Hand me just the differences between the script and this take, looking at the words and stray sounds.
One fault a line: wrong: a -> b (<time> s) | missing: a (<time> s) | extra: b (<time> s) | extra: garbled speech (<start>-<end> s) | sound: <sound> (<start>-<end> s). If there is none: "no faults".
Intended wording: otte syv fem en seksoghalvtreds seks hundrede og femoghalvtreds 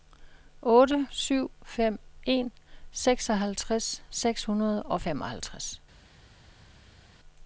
no faults